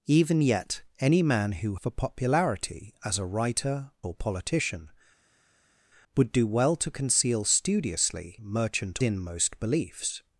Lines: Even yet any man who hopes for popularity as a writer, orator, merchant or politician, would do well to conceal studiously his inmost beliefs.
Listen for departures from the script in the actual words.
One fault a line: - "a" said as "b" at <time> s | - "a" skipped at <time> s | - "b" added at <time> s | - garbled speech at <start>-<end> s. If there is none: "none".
- "hopes" skipped at 1.8 s
- "orator merchant" skipped at 3.9 s
- "his" said as "merchant" at 8.4 s